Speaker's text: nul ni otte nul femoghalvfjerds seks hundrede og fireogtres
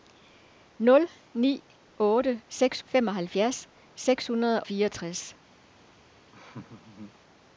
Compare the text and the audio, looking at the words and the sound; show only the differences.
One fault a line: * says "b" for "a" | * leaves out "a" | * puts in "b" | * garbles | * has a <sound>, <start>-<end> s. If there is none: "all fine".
* says "seks" for "nul"
* leaves out "og"
* has a laugh, 6.3-7.2 s